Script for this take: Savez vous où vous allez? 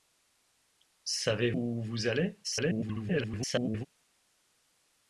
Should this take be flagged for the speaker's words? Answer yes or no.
yes